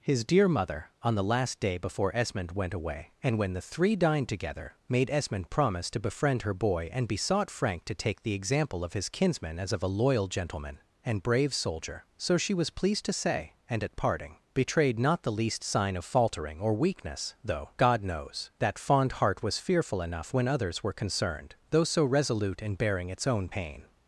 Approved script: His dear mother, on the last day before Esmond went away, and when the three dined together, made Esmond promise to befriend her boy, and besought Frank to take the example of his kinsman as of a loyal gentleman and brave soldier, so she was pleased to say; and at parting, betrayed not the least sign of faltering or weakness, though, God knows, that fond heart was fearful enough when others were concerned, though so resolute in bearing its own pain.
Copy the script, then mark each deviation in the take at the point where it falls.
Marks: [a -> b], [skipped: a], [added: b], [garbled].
His dear mother, on the last day before Esmond went away, and when the three dined together, made Esmond promise to befriend her boy, and besought Frank to take the example of his kinsman as of a loyal gentleman and brave soldier, so she was pleased to say; and at parting, betrayed not the least sign of faltering or weakness, though, God knows, that fond heart was fearful enough when others were concerned, though so resolute in bearing its own pain.